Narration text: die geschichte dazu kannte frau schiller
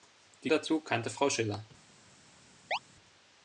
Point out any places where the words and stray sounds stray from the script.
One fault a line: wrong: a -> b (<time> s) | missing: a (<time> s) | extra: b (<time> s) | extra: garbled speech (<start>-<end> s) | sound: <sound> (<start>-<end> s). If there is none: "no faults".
missing: geschichte (0.5 s)
sound: chirp (2.7-2.8 s)